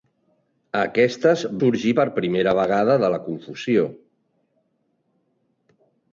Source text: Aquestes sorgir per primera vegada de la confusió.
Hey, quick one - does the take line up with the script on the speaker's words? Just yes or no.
yes